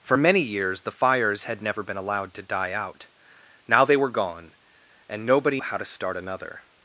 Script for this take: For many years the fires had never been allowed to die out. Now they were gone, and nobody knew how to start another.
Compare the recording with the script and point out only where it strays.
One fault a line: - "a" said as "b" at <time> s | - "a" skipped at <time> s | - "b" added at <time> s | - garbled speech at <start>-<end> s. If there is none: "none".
- "knew" skipped at 5.6 s